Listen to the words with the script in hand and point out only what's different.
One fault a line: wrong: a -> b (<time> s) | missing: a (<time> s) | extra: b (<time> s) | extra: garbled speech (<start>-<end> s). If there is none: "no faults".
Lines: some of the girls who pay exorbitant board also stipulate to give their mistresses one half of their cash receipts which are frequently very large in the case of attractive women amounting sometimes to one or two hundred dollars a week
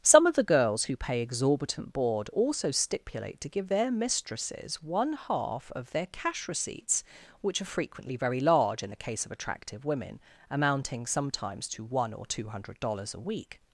no faults